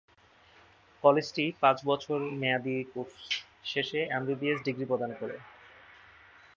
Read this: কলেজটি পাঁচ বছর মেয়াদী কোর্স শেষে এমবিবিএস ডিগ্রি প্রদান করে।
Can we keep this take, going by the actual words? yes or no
yes